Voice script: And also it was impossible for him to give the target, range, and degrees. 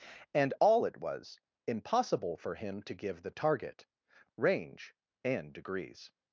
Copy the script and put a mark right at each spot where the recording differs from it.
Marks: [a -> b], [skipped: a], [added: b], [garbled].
And [also -> all] it was impossible for him to give the target, range, and degrees.